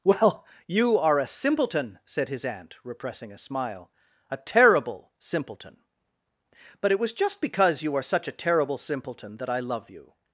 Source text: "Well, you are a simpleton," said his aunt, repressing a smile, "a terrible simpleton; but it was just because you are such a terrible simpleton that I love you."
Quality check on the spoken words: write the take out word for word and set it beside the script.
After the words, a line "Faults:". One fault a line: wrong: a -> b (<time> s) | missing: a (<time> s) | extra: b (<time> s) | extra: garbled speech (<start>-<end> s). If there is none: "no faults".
"Well, you are a simpleton," said his aunt, repressing a smile, "a terrible simpleton; but it was just because you are such a terrible simpleton that I love you."
Faults:
no faults